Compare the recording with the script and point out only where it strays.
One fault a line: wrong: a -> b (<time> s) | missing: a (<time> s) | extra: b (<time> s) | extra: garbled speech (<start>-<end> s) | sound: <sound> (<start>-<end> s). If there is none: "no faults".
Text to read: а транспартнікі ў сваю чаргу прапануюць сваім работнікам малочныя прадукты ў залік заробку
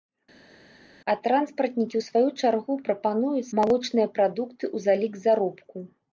missing: сваім работнікам (3.5 s)